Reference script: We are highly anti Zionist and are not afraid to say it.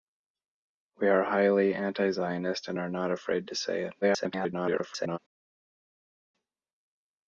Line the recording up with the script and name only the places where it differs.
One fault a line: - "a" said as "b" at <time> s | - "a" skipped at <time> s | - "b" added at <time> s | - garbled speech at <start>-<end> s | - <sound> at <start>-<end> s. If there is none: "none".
- garbled speech at 4.0-5.2 s